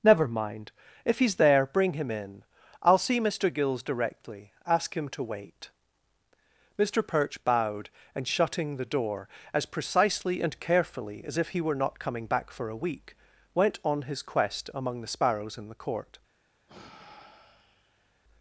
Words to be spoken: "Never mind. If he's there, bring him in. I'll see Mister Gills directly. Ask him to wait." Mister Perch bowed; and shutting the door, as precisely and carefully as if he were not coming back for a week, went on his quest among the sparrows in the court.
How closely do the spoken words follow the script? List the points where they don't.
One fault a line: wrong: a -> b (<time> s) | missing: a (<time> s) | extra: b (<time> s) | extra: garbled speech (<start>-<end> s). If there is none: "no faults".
no faults